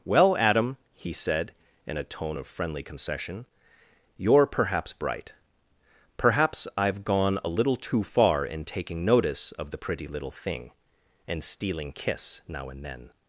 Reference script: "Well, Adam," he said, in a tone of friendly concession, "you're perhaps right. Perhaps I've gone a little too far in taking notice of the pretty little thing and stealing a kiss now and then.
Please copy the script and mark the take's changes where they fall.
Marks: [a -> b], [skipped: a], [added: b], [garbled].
"Well, Adam," he said, in a tone of friendly concession, "you're perhaps [right. -> bright] Perhaps I've gone a little too far in taking notice of the pretty little thing and stealing [skipped: a] kiss now and then.